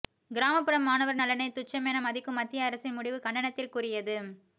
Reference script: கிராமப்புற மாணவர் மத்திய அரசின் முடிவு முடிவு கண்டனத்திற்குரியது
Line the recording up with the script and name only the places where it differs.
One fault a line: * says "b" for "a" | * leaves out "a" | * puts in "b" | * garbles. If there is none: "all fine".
* puts in "நலனை துச்சமென மதிக்கும்"
* leaves out "முடிவு"